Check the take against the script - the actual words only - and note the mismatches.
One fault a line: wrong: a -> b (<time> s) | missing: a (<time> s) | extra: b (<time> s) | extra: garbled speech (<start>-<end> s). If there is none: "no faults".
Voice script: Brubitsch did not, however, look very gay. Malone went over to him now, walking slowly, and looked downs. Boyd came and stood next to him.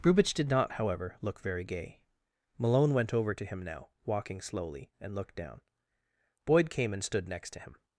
wrong: downs -> down (5.4 s)